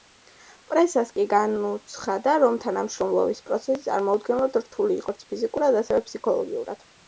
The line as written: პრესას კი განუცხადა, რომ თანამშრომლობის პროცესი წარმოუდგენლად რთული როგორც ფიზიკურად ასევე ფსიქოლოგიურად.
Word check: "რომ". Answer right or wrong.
right